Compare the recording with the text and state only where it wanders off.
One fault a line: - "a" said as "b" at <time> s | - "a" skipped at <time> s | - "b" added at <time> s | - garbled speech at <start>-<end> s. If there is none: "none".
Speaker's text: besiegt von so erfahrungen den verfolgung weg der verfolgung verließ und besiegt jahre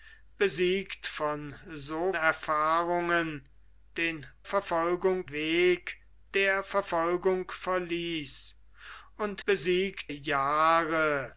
none